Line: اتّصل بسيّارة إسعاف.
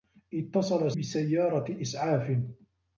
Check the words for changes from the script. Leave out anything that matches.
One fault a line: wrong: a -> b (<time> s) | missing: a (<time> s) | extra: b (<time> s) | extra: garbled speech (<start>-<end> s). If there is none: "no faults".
no faults